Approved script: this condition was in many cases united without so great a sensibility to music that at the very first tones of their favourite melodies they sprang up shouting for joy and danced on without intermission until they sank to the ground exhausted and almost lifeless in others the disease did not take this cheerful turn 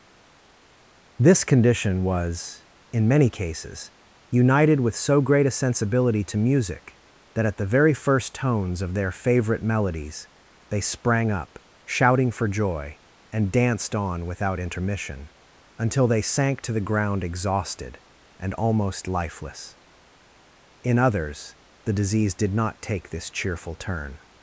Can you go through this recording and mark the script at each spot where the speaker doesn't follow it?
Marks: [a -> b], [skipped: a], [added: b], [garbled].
this condition was in many cases united [without -> with] so great a sensibility to music that at the very first tones of their favourite melodies they sprang up shouting for joy and danced on without intermission until they sank to the ground exhausted and almost lifeless in others the disease did not take this cheerful turn